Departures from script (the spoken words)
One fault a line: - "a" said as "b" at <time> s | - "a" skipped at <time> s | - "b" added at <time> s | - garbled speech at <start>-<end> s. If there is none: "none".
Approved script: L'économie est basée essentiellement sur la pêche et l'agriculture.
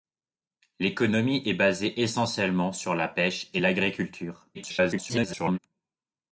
- garbled speech at 4.5-5.6 s